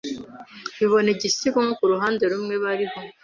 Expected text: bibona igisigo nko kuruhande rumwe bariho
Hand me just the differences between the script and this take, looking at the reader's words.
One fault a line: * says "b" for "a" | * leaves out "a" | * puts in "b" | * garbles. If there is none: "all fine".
all fine